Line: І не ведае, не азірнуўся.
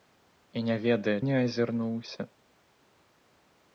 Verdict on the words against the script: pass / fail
pass